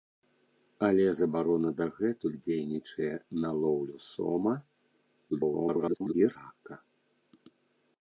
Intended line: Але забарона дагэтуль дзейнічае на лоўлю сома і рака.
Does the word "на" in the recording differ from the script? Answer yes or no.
no